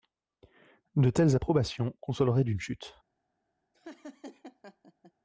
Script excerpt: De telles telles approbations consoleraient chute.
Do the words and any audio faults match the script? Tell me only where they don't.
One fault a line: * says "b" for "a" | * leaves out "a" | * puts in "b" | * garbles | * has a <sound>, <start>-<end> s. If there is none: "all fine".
* leaves out "telles"
* puts in "d'une"
* has a laugh, 3.7-5.1 s